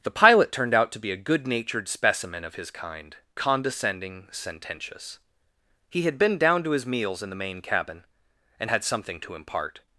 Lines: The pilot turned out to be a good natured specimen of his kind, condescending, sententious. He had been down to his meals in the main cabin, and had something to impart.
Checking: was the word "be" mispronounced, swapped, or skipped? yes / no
no